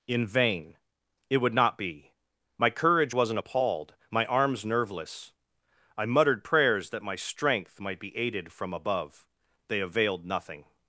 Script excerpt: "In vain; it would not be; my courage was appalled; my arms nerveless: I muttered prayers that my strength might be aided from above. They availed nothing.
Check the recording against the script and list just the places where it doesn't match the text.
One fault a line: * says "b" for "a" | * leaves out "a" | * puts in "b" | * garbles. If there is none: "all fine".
* says "wasn't" for "was"